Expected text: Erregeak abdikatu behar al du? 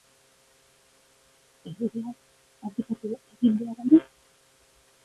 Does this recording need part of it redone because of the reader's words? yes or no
yes